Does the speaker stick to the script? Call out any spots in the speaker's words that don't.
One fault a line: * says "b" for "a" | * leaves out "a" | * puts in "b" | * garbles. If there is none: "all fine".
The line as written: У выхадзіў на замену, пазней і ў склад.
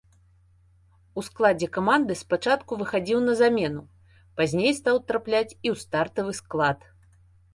* puts in "складзе каманды спачатку"
* puts in "стаў трапляць"
* puts in "стартавы"